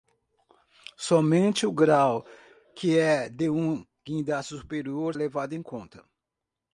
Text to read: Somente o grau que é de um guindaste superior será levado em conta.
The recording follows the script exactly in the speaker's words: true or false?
false